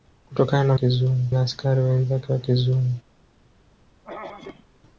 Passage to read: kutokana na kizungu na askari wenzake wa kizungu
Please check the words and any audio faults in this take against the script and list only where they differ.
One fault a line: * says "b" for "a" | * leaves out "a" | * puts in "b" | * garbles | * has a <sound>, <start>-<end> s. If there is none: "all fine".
* has a throat clearing, 4.0-4.8 s